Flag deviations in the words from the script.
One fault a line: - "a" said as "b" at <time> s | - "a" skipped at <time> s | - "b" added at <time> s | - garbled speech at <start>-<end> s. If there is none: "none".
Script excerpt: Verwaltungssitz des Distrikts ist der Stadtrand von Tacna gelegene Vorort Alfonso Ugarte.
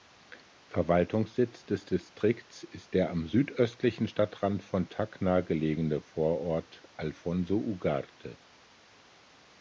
- "am südöstlichen" added at 3.1 s